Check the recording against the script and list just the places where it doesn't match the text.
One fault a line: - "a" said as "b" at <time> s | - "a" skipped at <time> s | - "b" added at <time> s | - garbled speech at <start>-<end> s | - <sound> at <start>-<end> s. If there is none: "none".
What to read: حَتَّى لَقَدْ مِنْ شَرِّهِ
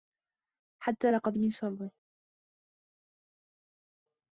none